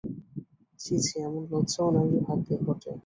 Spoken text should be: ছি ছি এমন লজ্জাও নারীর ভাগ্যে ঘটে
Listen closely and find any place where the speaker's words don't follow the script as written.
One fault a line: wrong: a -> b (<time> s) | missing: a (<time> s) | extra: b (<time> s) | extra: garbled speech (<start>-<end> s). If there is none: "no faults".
no faults